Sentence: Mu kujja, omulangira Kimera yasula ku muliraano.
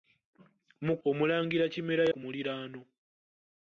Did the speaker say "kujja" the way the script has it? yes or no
no